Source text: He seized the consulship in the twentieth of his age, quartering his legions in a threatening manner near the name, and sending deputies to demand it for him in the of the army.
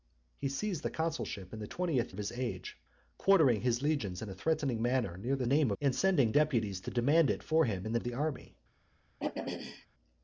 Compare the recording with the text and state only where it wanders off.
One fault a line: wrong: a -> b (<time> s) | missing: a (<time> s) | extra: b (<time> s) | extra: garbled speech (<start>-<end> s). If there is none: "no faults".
no faults